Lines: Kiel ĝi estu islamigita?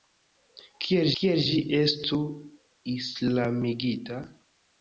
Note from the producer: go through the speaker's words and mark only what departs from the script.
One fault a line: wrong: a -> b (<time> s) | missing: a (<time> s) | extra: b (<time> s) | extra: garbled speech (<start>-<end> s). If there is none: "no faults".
extra: kiel (1.2 s)